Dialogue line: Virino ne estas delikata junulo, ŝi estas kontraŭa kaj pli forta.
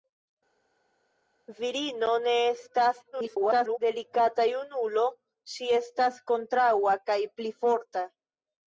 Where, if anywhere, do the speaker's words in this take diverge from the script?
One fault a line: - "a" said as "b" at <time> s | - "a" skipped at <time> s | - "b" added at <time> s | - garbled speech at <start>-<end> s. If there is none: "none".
- garbled speech at 3.1-3.8 s